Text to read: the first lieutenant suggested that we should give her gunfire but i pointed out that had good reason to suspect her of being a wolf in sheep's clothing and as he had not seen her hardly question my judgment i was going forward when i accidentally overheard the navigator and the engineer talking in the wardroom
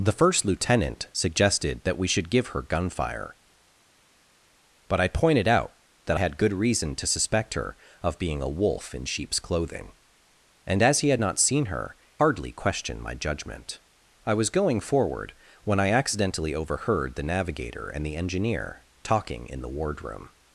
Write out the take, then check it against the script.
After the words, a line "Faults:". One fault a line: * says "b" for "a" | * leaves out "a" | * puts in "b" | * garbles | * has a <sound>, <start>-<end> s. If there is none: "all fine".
the first lieutenant suggested that we should give her gunfire but i pointed out that had good reason to suspect her of being a wolf in sheep's clothing and as he had not seen her hardly question my judgment i was going forward when i accidentally overheard the navigator and the engineer talking in the wardroom
Faults:
all fine